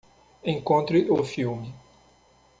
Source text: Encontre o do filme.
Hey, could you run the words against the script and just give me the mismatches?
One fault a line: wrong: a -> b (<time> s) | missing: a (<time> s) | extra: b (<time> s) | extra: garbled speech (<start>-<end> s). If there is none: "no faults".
no faults